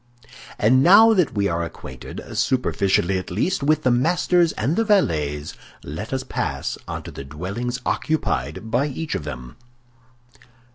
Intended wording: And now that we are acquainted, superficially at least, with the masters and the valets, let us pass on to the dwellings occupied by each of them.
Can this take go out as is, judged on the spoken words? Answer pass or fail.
pass